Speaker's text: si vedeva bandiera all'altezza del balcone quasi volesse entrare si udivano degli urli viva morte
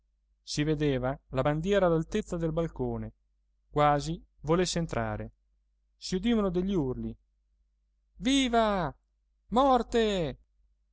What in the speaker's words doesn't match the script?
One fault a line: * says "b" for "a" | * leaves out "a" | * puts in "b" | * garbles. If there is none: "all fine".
* puts in "la"